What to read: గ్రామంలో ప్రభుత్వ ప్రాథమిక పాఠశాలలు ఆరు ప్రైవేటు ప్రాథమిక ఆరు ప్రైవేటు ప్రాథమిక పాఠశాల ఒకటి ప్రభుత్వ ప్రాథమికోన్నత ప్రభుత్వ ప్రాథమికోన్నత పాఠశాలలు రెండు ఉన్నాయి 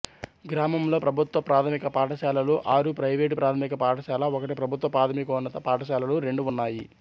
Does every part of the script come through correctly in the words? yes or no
no